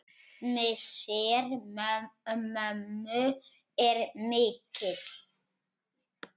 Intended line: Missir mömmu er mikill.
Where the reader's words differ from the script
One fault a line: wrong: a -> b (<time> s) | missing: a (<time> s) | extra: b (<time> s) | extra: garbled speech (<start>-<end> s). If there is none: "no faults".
no faults